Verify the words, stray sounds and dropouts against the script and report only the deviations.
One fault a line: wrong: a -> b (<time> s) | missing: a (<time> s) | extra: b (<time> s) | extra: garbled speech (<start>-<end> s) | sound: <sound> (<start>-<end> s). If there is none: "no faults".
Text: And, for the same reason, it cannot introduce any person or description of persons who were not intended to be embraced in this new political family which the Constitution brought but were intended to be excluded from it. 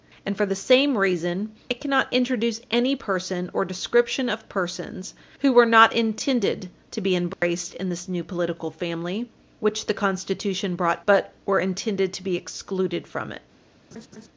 sound: dropout (7.3-7.4 s)
sound: laugh (13.9-14.3 s)